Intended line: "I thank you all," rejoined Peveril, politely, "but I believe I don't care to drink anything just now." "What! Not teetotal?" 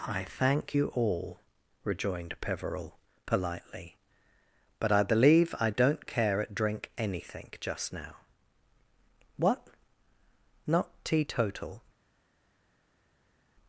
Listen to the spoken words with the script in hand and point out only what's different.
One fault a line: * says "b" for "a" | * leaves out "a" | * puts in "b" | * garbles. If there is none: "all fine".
* says "at" for "to"